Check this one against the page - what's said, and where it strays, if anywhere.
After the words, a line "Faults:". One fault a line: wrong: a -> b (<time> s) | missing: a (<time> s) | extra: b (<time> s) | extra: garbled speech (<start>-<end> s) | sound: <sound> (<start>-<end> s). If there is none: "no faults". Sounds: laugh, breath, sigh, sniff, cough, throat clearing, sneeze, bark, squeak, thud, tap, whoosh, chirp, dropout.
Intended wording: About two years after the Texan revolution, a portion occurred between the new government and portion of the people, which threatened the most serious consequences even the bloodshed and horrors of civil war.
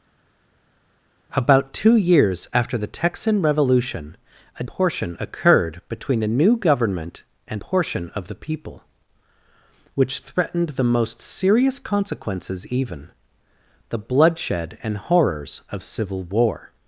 About two years after the Texan revolution, a portion occurred between the new government and portion of the people, which threatened the most serious consequences even the bloodshed and horrors of civil war.
Faults:
no faults